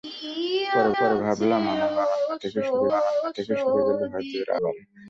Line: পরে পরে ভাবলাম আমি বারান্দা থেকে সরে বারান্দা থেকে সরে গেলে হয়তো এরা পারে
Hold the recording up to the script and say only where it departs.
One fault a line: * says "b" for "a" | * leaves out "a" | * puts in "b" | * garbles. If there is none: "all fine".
all fine